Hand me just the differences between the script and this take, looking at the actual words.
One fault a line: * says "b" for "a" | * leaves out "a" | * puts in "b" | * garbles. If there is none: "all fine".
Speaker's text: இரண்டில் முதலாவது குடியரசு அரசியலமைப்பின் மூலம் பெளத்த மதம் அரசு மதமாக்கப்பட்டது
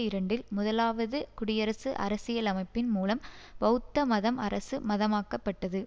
all fine